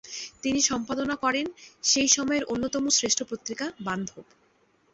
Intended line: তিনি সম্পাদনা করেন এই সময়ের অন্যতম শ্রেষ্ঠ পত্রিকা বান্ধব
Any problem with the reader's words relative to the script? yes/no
yes